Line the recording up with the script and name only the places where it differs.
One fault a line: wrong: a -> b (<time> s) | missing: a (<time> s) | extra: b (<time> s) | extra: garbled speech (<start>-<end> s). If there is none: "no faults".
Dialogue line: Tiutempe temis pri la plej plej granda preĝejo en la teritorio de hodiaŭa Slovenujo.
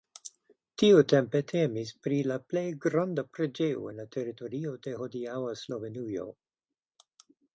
missing: plej (2.6 s)